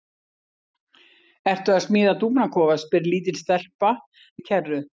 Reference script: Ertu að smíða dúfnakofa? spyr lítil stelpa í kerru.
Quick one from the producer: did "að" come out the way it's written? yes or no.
yes